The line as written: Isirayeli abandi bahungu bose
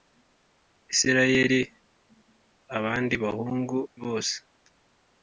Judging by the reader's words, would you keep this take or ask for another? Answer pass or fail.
pass